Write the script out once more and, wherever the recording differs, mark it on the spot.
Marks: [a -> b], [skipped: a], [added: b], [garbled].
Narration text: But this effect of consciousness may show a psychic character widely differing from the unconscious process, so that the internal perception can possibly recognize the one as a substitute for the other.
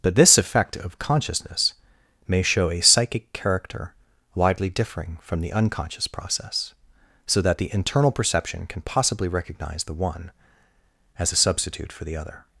But this effect of consciousness may show a psychic character widely differing from the unconscious process, so that the internal perception can possibly recognize the one as a substitute for the other.